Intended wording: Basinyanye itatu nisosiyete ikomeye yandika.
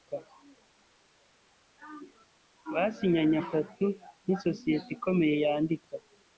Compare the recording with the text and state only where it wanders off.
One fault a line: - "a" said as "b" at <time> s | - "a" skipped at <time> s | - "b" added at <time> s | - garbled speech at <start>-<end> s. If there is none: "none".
none